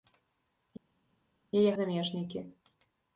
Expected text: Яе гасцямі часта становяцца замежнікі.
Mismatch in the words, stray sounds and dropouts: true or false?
true